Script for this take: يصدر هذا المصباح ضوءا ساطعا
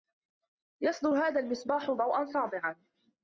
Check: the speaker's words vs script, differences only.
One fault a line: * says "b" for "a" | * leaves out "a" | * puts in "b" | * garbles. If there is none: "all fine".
all fine